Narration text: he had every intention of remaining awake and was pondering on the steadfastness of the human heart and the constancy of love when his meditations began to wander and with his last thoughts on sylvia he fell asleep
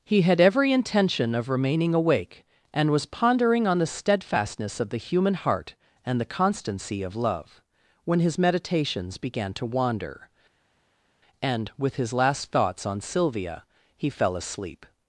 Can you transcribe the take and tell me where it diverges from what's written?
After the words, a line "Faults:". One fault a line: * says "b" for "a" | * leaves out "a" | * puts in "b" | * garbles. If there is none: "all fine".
he had every intention of remaining awake and was pondering on the steadfastness of the human heart and the constancy of love when his meditations began to wander and with his last thoughts on sylvia he fell asleep
Faults:
all fine